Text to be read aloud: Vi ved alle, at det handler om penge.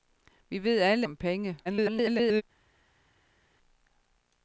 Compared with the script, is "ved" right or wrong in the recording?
right